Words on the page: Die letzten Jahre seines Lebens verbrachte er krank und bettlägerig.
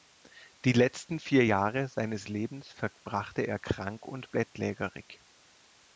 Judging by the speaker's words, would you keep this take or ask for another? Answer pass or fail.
fail